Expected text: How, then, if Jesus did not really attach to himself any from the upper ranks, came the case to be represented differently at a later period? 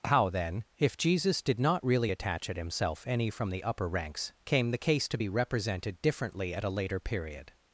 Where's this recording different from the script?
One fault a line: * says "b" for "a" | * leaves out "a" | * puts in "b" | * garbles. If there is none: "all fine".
* says "at" for "to"